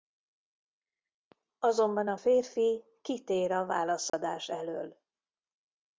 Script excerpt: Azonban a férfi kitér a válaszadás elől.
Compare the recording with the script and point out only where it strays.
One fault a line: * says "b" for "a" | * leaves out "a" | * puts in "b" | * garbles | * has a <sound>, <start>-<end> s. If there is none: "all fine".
* has a dropout, 4.1-4.1 s